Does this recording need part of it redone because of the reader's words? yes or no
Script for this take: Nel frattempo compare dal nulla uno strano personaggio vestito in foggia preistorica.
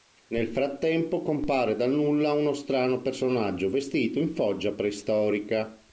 no